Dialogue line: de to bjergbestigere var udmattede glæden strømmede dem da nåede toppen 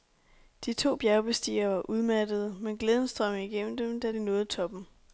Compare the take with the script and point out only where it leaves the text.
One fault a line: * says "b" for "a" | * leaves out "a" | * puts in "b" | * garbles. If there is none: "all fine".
* puts in "men"
* puts in "igennem"
* puts in "de"